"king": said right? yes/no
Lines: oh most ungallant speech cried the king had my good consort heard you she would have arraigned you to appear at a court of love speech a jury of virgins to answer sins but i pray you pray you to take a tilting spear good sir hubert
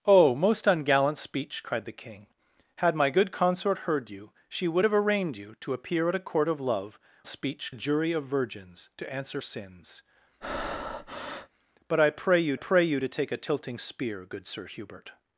yes